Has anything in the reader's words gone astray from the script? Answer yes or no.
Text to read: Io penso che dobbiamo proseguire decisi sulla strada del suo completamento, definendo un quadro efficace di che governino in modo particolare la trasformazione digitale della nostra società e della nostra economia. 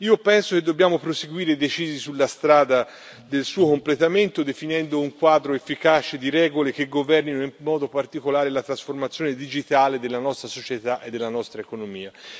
yes